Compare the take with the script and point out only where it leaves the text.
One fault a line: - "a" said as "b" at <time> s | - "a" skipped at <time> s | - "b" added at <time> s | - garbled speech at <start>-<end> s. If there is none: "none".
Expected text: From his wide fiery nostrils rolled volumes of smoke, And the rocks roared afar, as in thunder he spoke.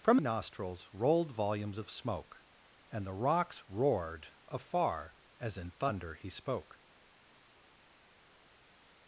- "his wide fiery" skipped at 0.2 s